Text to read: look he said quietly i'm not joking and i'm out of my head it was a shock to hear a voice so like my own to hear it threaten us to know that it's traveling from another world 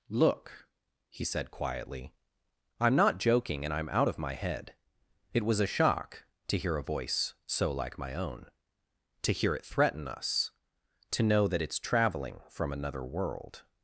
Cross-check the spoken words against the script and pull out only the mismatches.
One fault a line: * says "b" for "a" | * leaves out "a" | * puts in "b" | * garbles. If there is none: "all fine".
all fine